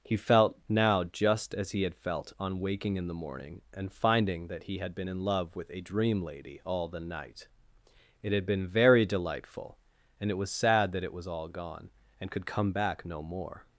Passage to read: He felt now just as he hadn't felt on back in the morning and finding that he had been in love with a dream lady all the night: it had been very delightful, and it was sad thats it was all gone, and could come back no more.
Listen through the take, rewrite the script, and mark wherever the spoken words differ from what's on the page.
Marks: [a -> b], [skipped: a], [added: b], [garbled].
He felt now just as he [hadn't -> had] felt on [back -> waking] in the morning and finding that he had been in love with a dream lady all the night: it had been very delightful, and it was sad [thats -> that] it was all gone, and could come back no more.